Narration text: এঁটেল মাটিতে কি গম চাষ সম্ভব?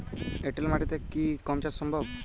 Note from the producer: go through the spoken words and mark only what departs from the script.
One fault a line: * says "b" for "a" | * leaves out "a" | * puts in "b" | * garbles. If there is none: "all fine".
all fine